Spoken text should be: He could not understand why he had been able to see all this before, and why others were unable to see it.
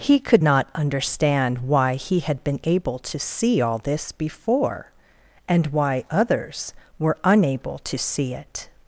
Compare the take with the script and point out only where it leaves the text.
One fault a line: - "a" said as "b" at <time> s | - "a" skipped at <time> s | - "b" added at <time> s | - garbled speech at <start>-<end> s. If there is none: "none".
none